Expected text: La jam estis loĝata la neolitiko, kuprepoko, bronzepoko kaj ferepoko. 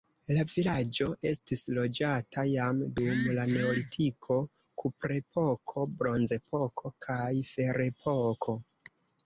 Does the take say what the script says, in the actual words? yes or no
no